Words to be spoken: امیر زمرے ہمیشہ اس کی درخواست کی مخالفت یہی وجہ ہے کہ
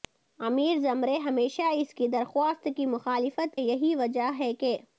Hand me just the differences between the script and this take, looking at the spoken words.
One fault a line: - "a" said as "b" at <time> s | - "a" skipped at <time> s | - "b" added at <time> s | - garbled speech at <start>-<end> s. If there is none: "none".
none